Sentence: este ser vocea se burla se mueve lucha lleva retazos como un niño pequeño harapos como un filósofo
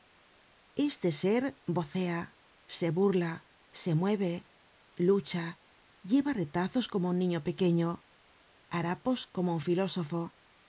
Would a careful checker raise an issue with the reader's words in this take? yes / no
no